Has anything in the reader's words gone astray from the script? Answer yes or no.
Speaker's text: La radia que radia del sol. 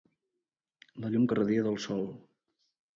yes